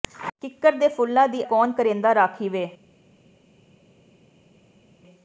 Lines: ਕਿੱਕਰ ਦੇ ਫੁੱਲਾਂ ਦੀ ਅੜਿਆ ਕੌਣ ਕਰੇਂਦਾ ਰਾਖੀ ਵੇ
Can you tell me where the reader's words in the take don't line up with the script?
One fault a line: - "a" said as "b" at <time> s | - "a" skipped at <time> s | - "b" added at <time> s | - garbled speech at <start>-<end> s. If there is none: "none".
- "ਅੜਿਆ" skipped at 1.4 s